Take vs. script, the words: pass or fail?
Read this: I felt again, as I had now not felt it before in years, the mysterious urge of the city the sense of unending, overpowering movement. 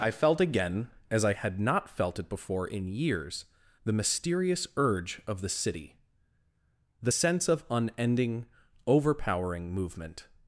fail